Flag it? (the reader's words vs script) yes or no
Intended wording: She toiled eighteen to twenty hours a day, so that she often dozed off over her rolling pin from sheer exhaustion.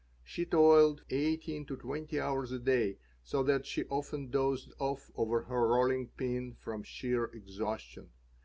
no